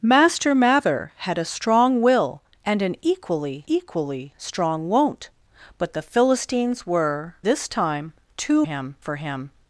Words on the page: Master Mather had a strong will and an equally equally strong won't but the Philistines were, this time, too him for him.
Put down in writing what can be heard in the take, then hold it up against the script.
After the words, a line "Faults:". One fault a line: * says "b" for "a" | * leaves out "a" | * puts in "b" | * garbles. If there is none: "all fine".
Master Mather had a strong will and an equally equally strong won't but the Philistines were, this time, too him for him.
Faults:
all fine